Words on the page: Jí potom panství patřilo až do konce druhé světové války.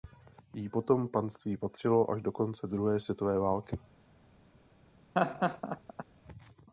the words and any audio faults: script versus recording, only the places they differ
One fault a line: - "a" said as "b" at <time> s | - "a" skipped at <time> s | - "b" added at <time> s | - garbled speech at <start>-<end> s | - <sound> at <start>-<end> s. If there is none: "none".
- laugh at 5.1-6.0 s